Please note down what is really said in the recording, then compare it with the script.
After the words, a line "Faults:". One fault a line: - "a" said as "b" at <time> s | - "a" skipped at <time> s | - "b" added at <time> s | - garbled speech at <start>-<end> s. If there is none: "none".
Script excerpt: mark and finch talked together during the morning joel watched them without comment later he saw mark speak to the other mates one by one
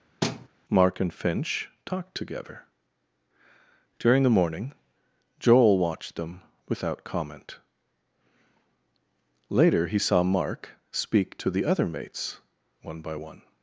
mark and finch talked together during the morning joel watched them without comment later he saw mark speak to the other mates one by one
Faults:
none